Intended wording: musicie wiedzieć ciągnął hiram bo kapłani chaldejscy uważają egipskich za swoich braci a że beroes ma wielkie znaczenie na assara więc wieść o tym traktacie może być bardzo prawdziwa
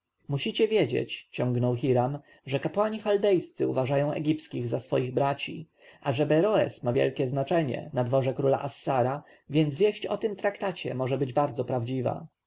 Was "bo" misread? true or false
true